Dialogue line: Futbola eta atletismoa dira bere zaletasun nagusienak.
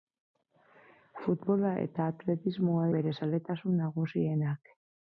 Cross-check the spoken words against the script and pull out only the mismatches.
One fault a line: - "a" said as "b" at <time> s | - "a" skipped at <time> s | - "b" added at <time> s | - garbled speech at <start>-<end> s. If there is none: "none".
- "dira" skipped at 2.9 s